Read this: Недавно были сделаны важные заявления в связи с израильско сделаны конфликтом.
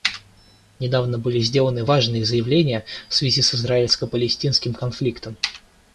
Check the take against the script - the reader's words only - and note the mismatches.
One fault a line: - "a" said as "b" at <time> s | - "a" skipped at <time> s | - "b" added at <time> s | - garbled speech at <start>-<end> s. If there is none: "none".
- "сделаны" said as "палестинским" at 4.1 s